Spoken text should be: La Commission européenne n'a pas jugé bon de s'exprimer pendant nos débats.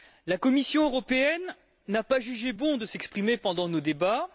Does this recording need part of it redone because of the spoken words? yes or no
no